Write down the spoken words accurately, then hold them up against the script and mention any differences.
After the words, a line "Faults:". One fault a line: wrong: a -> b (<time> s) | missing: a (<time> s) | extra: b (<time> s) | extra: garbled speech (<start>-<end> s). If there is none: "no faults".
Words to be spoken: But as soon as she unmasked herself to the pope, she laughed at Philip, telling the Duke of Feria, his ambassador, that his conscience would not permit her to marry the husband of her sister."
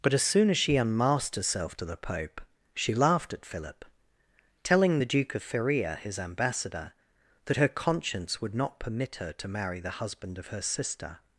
But as soon as she unmasked herself to the pope, she laughed at Philip, telling the Duke of Feria, his ambassador, that her conscience would not permit her to marry the husband of her sister."
Faults:
wrong: his -> her (7.5 s)